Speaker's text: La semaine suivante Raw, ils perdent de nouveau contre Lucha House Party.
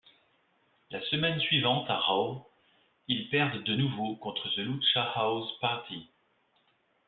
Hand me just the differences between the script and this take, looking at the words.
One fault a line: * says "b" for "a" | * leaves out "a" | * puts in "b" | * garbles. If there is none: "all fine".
* puts in "à"
* puts in "The"